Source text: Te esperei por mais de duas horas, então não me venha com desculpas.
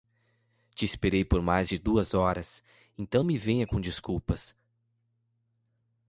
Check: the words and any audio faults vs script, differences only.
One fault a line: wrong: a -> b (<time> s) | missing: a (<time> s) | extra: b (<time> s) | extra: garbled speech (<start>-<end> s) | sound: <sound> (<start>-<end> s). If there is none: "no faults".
missing: não (3.2 s)